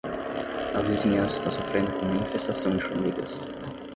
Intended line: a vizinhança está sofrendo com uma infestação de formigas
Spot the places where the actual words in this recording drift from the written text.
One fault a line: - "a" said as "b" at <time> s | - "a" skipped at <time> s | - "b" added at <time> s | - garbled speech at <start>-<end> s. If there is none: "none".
none